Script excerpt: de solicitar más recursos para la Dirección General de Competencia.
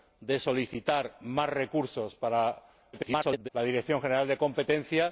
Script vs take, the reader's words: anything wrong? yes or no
yes